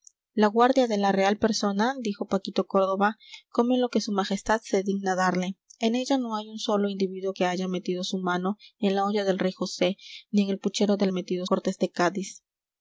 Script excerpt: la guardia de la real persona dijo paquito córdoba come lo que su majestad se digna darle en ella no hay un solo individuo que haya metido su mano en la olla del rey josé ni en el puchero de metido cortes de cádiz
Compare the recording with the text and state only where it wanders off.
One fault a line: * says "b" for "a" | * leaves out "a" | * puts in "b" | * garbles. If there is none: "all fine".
all fine